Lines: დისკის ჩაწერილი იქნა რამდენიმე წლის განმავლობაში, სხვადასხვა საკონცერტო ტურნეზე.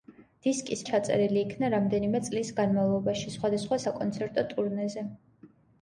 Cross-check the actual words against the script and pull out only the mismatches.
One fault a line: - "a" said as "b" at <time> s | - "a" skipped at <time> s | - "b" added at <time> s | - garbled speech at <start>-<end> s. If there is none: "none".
none